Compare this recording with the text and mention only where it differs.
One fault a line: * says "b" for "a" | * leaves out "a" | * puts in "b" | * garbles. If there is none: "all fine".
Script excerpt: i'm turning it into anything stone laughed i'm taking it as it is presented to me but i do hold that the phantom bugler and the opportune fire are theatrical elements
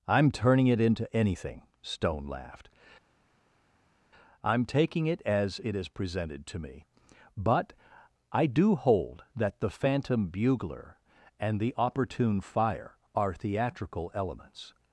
all fine